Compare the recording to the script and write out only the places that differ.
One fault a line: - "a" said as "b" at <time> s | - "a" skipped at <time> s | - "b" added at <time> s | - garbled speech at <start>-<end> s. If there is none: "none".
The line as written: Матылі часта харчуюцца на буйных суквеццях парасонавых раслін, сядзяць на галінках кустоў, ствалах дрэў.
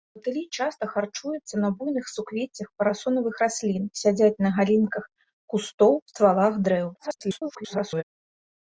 - garbled speech at 6.9-8.0 s